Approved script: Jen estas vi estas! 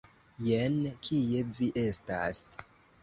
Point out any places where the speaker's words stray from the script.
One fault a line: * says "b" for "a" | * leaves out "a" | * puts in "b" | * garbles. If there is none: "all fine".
* says "kie" for "estas"